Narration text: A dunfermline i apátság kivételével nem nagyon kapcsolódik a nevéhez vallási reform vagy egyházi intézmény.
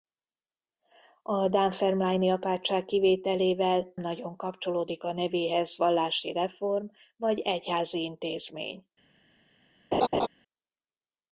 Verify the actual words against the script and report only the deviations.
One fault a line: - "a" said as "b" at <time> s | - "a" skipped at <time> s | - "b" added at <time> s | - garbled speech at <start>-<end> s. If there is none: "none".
- "nem" skipped at 4.0 s